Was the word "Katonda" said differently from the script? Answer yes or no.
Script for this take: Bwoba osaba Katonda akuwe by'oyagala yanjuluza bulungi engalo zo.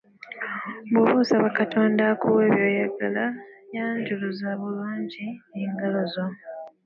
no